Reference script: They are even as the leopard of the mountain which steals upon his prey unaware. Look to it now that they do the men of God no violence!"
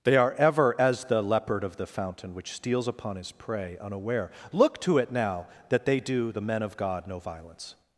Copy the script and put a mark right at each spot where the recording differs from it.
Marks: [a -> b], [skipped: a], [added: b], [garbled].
They are [even -> ever] as the leopard of the [mountain -> fountain] which steals upon his prey unaware. Look to it now that they do the men of God no violence!"